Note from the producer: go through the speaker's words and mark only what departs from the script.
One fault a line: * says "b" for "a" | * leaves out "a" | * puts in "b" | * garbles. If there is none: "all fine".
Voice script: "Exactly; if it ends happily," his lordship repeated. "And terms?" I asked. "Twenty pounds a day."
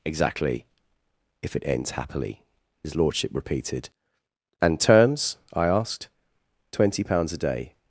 all fine